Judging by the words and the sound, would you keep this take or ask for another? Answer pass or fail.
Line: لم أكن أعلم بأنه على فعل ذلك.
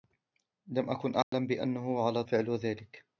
fail